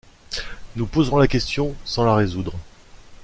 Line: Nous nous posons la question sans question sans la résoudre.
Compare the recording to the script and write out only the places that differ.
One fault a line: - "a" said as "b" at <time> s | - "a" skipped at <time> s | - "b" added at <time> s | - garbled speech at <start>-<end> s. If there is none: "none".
- "nous" skipped at 0.9 s
- "question sans" skipped at 2.0 s